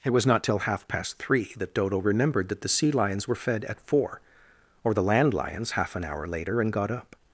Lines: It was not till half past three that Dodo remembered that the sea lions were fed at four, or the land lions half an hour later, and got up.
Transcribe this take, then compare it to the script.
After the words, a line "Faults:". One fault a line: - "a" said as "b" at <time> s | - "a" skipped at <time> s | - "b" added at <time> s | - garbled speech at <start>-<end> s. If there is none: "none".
It was not till half past three that Dodo remembered that the sea lions were fed at four, or the land lions half an hour later, and got up.
Faults:
none